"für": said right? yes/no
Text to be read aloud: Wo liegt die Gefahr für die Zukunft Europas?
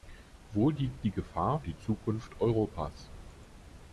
no